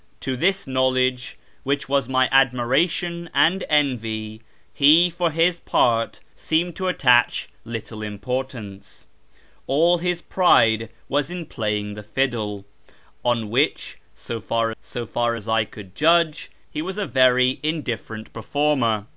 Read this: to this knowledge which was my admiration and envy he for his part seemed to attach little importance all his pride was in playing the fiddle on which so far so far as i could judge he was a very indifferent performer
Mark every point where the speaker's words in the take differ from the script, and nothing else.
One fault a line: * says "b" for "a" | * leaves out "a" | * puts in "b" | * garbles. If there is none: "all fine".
all fine